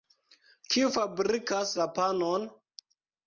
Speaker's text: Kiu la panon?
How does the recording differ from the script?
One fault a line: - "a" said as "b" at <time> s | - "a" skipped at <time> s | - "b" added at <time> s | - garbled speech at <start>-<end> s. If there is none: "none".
- "fabrikas" added at 0.9 s